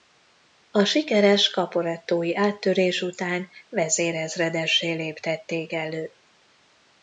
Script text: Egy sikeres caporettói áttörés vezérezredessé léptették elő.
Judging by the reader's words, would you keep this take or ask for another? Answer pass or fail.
fail